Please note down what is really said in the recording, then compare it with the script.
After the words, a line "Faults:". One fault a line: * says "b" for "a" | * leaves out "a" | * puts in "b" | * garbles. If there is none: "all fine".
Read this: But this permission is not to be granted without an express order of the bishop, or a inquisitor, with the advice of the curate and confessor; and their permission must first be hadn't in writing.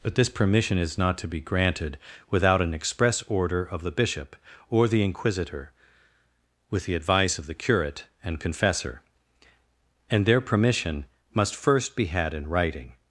But this permission is not to be granted without an express order of the bishop, or the inquisitor, with the advice of the curate and confessor; and their permission must first be had in writing.
Faults:
* says "the" for "a"
* says "had" for "hadn't"